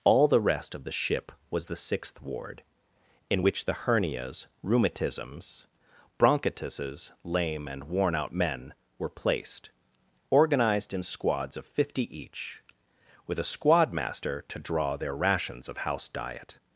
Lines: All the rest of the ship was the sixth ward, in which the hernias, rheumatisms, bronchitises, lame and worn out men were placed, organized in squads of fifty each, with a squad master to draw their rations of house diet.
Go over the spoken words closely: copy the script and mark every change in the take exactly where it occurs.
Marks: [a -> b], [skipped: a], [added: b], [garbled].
All the rest of the ship was the sixth ward, in which the hernias, rheumatisms, bronchitises, lame and worn out men were placed, organized in squads of fifty each, with a squad master to draw their rations of house diet.